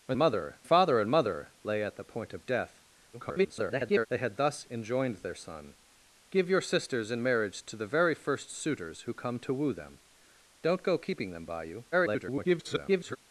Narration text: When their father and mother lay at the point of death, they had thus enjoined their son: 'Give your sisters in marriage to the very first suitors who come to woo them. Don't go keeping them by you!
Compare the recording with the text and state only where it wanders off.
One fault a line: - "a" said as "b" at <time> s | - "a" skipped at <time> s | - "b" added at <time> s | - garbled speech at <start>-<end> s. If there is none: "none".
- "their" said as "mother" at 0.2 s
- garbled speech at 3.1-4.1 s
- garbled speech at 11.9-13.2 s